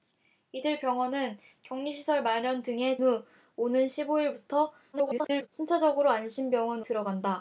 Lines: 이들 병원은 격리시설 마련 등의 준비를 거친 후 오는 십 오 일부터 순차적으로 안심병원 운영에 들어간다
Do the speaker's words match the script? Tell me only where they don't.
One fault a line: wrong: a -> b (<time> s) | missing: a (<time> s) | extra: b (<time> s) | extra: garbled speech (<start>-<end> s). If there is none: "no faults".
missing: 준비를 거친 (3.0 s)
extra: garbled speech (4.9-5.5 s)
missing: 운영에 (6.8 s)